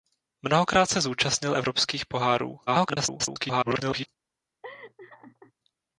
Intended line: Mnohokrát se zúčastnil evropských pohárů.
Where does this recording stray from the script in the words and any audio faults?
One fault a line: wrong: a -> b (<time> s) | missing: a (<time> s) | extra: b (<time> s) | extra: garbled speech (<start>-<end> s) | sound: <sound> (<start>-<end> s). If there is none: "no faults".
extra: garbled speech (2.7-4.1 s)
sound: laugh (4.6-5.5 s)